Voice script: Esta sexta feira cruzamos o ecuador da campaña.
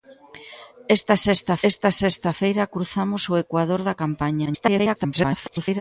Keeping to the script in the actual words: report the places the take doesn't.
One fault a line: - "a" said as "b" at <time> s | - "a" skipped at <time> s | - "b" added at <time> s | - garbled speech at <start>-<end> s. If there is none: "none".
- "esta sexta" added at 1.7 s
- garbled speech at 4.5-5.8 s